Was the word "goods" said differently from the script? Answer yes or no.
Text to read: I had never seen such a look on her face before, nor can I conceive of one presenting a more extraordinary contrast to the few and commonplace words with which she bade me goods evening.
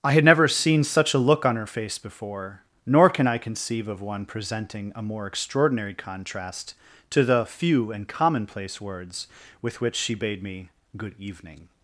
yes